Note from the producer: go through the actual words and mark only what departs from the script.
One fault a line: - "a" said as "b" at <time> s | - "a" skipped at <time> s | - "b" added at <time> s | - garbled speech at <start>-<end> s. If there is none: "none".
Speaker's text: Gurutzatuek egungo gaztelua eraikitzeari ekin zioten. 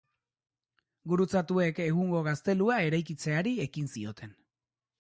none